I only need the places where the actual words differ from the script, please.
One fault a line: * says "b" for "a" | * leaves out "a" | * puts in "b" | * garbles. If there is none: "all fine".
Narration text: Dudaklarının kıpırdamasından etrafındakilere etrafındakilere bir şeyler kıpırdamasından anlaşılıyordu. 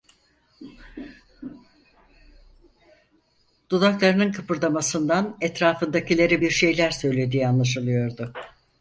* leaves out "etrafındakilere"
* says "söylediği" for "kıpırdamasından"